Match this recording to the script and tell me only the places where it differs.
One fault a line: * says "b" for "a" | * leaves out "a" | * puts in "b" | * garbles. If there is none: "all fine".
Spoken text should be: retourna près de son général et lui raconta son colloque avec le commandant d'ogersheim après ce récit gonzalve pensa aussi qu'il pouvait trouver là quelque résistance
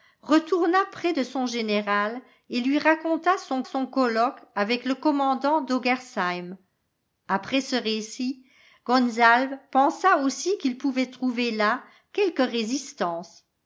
* puts in "son"